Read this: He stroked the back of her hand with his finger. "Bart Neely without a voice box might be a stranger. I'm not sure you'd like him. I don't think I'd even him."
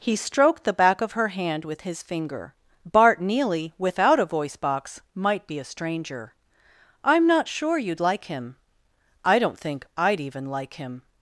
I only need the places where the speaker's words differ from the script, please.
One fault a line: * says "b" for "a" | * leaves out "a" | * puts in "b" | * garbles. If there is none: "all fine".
* puts in "like"